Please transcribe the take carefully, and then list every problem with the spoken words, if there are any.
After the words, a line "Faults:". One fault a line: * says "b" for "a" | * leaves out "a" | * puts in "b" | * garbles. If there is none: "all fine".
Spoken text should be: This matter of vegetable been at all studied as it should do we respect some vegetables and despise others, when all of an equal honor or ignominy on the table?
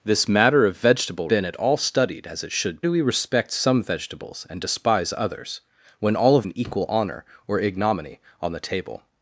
This matter of vegetable been at all studied as it should do we respect some vegetables and despise others, when all of an equal honor or ignominy on the table?
Faults:
all fine